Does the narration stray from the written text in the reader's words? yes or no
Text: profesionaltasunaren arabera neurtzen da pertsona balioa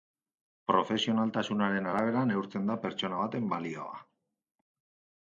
yes